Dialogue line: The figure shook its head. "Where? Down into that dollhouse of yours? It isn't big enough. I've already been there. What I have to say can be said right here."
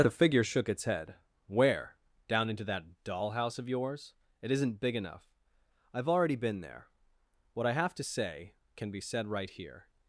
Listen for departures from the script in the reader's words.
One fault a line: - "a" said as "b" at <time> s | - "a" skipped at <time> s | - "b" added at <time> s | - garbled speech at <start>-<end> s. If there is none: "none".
none